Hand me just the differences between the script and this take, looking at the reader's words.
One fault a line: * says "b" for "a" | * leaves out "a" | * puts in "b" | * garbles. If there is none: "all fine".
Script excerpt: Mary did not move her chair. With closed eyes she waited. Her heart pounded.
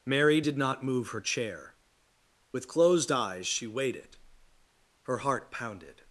all fine